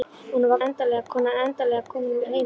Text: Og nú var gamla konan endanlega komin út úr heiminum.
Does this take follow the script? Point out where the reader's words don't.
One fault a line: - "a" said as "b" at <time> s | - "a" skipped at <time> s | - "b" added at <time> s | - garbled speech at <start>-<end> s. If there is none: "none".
- "gamla" said as "endanlega" at 0.7 s
- "út" skipped at 2.2 s